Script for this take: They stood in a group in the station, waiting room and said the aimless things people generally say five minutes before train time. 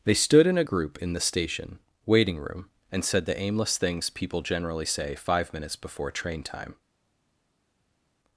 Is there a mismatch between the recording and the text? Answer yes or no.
no